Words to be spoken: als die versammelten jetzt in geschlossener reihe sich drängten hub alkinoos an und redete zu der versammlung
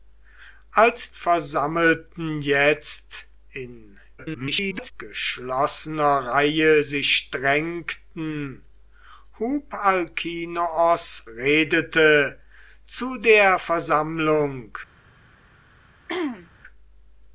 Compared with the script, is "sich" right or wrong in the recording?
right